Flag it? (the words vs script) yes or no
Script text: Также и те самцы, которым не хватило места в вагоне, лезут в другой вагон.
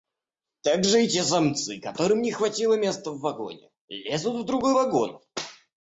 no